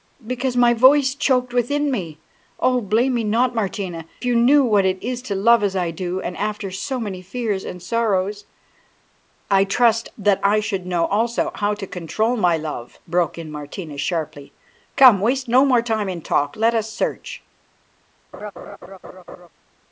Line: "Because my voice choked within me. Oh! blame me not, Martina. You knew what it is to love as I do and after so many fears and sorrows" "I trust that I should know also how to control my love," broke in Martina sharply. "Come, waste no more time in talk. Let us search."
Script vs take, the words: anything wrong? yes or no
no